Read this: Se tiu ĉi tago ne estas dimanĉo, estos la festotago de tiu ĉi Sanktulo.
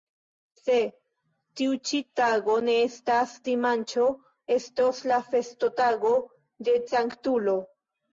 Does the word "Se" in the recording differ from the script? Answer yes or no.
no